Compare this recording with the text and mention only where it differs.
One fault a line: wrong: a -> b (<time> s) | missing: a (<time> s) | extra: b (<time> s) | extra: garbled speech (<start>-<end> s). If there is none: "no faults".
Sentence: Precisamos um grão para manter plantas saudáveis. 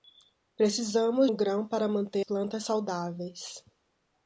no faults